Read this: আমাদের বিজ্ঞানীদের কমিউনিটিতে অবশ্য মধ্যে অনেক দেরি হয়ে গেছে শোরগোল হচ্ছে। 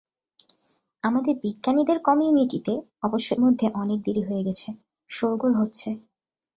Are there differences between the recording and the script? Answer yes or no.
no